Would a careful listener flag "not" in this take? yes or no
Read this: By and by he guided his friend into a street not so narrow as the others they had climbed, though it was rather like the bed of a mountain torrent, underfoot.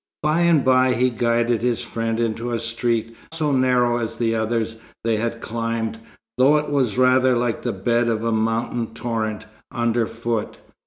yes